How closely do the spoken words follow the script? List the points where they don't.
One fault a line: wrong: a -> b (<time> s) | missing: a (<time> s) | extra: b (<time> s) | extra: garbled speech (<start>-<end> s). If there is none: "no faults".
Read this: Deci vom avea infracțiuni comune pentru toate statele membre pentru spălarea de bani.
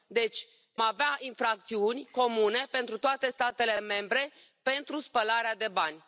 missing: vom (0.5 s)